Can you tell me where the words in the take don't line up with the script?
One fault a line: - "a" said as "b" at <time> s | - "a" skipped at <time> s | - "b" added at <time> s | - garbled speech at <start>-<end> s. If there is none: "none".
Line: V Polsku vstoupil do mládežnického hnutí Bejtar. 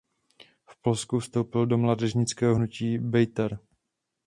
none